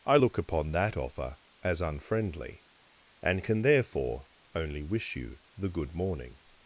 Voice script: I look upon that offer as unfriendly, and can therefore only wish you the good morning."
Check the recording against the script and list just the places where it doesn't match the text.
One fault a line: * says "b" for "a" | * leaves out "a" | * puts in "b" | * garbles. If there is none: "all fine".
all fine